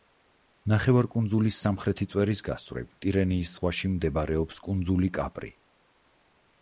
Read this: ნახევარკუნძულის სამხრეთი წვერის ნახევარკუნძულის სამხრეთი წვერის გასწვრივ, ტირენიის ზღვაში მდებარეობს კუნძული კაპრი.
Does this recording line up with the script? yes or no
no